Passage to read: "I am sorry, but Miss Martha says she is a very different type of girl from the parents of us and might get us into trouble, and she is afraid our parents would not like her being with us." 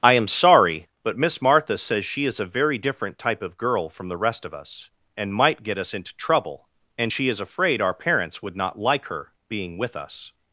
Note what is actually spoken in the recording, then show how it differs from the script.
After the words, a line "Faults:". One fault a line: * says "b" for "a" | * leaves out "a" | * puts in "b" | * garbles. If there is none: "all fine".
"I am sorry, but Miss Martha says she is a very different type of girl from the rest of us and might get us into trouble, and she is afraid our parents would not like her being with us."
Faults:
* says "rest" for "parents"